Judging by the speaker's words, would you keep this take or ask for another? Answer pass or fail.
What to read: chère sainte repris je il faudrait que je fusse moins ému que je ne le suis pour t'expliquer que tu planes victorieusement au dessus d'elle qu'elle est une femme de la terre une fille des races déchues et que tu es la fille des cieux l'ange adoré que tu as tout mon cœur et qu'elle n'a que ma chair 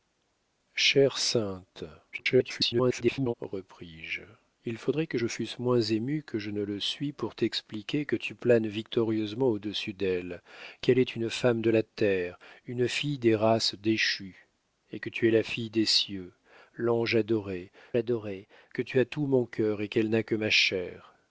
fail